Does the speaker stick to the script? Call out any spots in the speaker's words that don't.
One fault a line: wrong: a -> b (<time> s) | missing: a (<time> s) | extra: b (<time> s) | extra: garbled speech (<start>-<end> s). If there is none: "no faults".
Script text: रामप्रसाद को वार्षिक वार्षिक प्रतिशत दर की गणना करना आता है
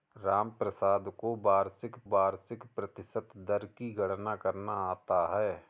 no faults